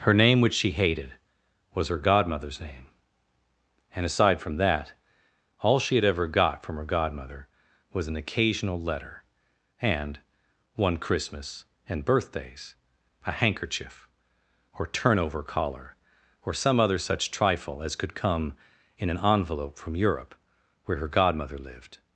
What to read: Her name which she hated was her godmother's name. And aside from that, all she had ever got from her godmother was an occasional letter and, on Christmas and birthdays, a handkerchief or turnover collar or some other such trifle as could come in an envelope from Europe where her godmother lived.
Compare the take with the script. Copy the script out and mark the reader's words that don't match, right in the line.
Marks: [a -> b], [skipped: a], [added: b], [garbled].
Her name which she hated was her godmother's name. And aside from that, all she had ever got from her godmother was an occasional letter and, [on -> one] Christmas and birthdays, a handkerchief or turnover collar or some other such trifle as could come in an envelope from Europe where her godmother lived.